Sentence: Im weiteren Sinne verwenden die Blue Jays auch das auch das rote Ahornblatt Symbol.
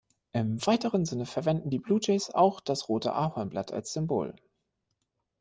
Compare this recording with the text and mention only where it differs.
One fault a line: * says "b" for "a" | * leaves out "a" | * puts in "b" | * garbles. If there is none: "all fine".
* leaves out "auch das"
* puts in "als"